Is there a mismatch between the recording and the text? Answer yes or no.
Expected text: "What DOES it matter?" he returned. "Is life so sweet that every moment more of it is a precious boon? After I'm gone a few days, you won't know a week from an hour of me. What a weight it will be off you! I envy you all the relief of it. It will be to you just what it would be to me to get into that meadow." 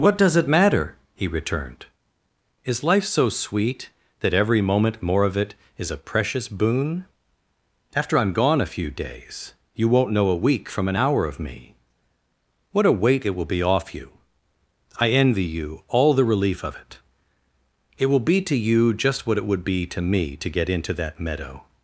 no